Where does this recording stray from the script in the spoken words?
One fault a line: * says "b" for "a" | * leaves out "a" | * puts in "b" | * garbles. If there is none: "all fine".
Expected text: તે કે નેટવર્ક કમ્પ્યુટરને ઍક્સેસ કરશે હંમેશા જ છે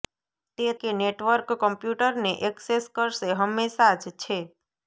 all fine